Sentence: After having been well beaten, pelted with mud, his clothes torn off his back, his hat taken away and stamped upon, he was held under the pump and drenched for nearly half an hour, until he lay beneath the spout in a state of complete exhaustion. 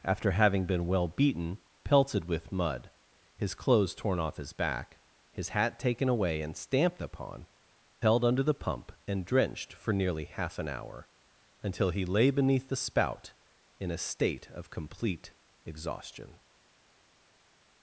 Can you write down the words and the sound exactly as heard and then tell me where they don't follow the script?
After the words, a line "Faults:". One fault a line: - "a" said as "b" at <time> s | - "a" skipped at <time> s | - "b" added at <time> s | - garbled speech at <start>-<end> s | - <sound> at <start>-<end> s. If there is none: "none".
After having been well beaten, pelted with mud, his clothes torn off his back, his hat taken away and stamped upon, held under the pump and drenched for nearly half an hour, until he lay beneath the spout in a state of complete exhaustion.
Faults:
- "he was" skipped at 7.5 s